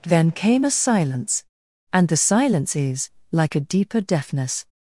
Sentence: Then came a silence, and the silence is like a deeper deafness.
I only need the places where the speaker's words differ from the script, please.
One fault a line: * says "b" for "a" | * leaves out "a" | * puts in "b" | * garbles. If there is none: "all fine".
all fine